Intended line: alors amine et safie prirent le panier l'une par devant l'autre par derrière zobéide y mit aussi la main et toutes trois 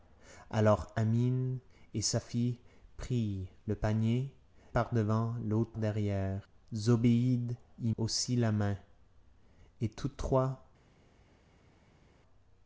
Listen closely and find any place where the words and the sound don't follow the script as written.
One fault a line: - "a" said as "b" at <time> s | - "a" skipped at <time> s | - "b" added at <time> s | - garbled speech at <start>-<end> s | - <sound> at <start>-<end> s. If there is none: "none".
- "l'une" skipped at 4.3 s
- "par" skipped at 5.7 s
- "mit" skipped at 7.9 s